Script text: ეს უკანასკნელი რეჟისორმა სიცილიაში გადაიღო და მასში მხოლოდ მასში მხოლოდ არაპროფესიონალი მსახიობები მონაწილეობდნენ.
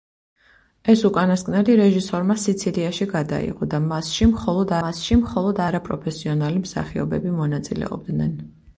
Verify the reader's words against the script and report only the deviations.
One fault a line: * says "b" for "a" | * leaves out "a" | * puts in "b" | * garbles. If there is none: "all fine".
all fine